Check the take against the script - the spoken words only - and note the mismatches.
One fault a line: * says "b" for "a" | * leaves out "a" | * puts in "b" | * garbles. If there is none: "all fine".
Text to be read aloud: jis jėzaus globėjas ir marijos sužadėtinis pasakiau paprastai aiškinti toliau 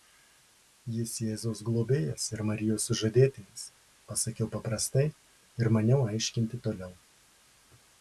* puts in "ir maniau"